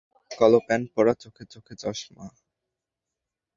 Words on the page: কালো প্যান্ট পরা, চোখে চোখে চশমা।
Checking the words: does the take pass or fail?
pass